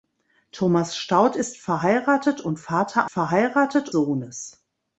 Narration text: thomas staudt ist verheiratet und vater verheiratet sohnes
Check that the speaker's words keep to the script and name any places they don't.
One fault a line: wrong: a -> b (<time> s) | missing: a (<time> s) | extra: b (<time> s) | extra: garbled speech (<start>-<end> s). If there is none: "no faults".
no faults